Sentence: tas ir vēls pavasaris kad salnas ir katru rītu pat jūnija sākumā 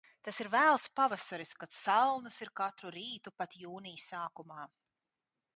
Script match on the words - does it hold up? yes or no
yes